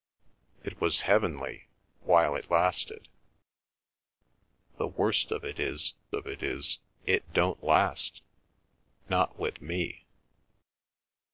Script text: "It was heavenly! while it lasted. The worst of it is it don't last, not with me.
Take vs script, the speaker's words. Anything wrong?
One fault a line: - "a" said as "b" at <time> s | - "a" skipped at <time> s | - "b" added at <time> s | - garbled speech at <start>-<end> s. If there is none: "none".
- "of it is" added at 6.1 s